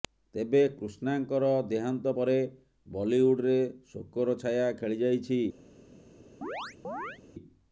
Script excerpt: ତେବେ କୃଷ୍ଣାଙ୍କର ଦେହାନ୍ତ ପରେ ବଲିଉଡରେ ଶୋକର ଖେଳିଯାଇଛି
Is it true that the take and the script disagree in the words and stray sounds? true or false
true